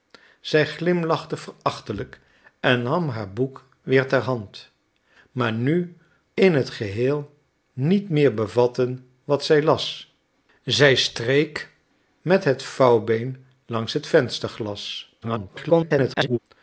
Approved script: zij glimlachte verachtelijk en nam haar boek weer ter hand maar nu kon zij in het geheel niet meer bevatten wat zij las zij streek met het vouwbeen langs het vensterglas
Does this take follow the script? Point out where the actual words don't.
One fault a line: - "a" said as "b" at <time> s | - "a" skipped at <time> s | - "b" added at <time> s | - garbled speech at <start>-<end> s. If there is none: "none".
- "kon zij" skipped at 6.0 s
- garbled speech at 15.2-16.4 s